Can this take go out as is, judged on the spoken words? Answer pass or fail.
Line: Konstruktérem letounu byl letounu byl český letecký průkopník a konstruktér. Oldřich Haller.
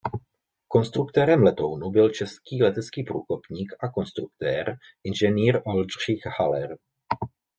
fail